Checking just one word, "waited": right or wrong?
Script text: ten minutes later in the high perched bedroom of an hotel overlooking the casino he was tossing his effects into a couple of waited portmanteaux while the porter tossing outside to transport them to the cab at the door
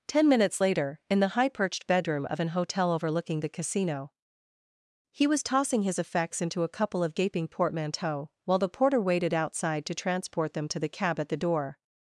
wrong